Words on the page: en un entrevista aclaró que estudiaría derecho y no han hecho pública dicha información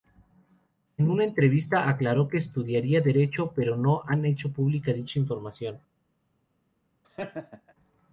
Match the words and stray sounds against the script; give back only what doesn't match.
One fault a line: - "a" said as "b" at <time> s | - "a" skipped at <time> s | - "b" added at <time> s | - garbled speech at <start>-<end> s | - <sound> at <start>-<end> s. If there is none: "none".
- "un" said as "una" at 1.1 s
- "y" said as "pero" at 3.5 s
- laugh at 7.0-7.7 s